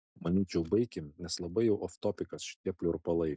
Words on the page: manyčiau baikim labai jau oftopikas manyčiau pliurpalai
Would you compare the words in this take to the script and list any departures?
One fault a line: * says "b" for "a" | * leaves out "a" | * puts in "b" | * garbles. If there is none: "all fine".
* puts in "nes"
* says "šitie" for "manyčiau"